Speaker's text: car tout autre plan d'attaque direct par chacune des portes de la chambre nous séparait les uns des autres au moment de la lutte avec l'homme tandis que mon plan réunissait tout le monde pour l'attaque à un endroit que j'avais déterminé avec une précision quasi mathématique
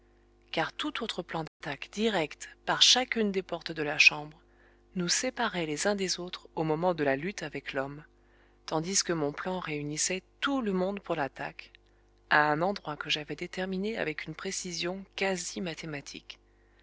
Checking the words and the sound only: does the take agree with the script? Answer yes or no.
no